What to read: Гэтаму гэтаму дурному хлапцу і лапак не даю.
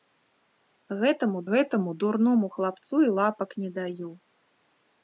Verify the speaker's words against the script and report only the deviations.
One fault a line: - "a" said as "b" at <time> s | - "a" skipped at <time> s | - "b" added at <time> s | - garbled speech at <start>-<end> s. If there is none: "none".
none